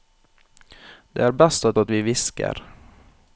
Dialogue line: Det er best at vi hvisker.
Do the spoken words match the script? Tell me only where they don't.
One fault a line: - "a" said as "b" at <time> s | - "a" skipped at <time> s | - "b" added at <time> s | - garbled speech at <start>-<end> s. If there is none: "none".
- "at" added at 1.8 s